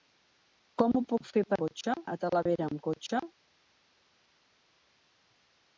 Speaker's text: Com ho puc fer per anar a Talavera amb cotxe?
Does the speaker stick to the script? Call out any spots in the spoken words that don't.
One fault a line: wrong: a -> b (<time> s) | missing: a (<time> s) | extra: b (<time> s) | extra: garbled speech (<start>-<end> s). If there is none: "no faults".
wrong: anar -> cotxe (1.6 s)